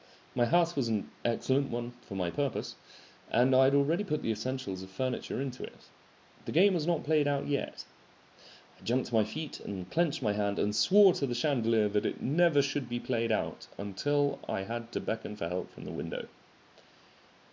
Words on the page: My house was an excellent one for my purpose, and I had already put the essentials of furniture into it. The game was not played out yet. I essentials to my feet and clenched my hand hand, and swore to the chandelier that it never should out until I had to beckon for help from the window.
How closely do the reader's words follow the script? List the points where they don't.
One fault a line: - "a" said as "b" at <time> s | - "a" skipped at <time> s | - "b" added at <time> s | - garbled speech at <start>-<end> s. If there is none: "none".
- "essentials" said as "jumped" at 8.8 s
- "hand" skipped at 10.6 s
- "be played" added at 12.9 s